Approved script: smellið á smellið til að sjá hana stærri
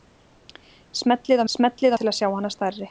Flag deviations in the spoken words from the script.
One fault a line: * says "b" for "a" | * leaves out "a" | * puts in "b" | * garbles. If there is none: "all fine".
all fine